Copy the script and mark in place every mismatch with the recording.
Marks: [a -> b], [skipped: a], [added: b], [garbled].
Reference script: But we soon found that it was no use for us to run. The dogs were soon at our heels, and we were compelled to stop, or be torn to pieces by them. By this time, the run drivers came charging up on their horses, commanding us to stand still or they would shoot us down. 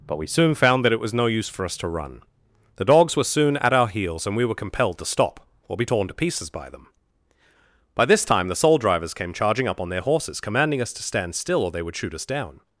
But we soon found that it was no use for us to run. The dogs were soon at our heels, and we were compelled to stop, or be torn to pieces by them. By this time, the [run -> soul] drivers came charging up on their horses, commanding us to stand still or they would shoot us down.